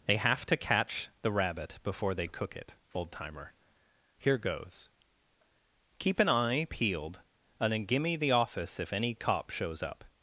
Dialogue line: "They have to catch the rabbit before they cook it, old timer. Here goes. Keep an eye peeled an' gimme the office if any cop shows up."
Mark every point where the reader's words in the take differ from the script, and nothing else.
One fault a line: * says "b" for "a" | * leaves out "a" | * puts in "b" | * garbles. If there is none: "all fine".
* says "and then" for "an"